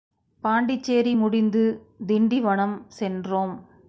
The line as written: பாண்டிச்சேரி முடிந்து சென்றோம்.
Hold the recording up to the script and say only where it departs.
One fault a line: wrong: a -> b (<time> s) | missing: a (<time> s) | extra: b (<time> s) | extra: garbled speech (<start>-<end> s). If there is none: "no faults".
extra: திண்டிவனம் (2.1 s)